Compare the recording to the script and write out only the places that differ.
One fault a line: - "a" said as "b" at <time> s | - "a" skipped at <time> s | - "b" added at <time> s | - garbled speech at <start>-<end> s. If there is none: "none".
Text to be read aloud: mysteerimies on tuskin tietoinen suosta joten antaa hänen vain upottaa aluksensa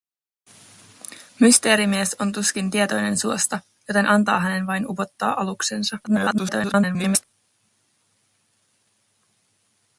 - garbled speech at 6.0-7.2 s